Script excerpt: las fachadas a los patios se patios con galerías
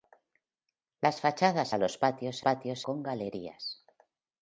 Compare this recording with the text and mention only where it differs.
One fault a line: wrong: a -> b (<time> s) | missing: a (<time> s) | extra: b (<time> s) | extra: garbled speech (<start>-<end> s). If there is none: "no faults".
no faults